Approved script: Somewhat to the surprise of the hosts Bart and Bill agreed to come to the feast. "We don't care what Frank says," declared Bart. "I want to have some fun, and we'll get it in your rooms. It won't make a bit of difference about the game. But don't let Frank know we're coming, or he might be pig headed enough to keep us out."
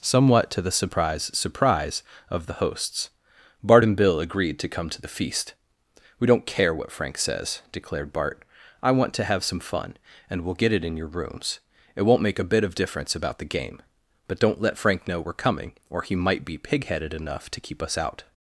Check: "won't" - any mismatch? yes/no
no